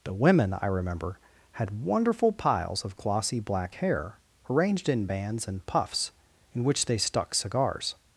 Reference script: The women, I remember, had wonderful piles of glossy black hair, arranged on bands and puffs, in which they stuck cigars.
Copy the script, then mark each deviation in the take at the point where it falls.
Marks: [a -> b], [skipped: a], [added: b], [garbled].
The women, I remember, had wonderful piles of glossy black hair, arranged [on -> in] bands and puffs, in which they stuck cigars.